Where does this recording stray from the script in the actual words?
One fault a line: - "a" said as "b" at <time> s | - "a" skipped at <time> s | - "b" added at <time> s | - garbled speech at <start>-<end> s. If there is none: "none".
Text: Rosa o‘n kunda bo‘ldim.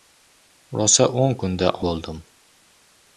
none